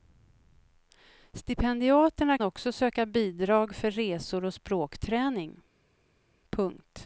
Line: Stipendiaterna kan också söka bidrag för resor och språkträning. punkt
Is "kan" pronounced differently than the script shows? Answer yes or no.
yes